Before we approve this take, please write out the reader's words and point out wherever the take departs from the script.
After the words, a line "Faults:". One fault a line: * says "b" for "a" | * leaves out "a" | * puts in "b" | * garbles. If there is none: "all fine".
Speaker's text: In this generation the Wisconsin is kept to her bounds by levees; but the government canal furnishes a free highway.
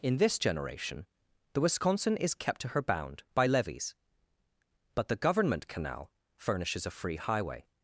In this generation the Wisconsin is kept to her bound by levees; but the government canal furnishes a free highway.
Faults:
* says "bound" for "bounds"